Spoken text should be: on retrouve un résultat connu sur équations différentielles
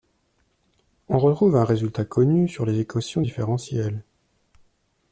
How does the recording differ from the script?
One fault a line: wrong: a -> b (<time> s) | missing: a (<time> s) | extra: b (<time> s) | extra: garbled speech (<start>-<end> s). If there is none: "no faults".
extra: les (2.6 s)